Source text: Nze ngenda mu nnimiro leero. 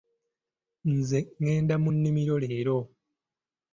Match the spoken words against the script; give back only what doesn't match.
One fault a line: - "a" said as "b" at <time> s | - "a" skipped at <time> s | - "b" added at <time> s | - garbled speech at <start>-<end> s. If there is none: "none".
none